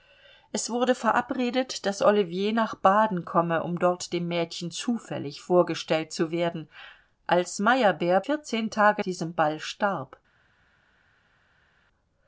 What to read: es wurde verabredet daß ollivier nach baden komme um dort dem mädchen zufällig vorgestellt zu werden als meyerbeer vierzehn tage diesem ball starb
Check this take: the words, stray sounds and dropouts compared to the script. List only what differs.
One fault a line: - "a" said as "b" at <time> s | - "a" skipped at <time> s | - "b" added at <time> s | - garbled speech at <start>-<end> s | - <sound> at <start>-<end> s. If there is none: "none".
none